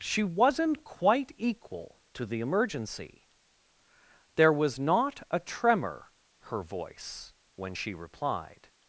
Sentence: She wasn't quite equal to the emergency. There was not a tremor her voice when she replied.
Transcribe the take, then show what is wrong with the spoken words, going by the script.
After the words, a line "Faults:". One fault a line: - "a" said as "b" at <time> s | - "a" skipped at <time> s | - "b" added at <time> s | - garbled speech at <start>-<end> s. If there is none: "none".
She wasn't quite equal to the emergency. There was not a tremor her voice when she replied.
Faults:
none